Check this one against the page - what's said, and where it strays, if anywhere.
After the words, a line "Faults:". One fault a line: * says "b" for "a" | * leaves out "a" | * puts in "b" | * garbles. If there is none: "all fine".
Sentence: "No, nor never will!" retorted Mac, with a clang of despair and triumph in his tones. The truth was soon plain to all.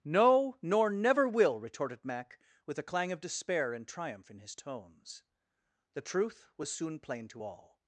"No, nor never will!" retorted Mac, with a clang of despair and triumph in his tones. The truth was soon plain to all.
Faults:
all fine